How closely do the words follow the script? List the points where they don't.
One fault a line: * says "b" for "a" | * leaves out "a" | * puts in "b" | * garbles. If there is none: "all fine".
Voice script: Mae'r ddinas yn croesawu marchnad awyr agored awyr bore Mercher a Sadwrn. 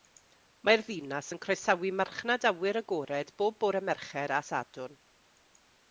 * says "bob" for "awyr"